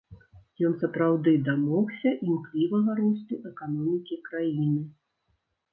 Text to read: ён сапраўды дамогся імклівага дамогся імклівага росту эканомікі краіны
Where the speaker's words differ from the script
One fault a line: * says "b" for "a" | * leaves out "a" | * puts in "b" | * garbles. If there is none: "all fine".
* leaves out "дамогся імклівага"